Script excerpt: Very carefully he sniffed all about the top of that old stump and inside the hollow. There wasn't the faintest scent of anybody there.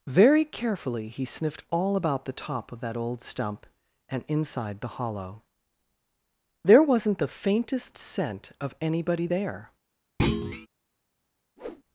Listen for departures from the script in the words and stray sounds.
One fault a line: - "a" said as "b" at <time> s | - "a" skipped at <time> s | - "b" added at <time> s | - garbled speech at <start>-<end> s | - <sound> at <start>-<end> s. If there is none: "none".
- thud at 10.2-10.7 s
- whoosh at 11.6-11.8 s